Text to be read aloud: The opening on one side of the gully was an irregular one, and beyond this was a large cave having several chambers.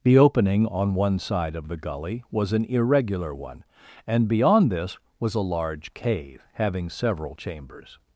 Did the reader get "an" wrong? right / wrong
right